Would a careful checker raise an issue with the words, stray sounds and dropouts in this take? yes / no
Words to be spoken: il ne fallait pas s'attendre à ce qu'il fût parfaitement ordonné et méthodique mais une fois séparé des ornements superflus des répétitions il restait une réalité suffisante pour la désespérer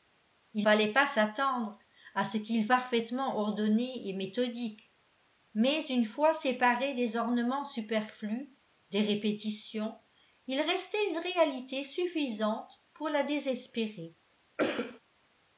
yes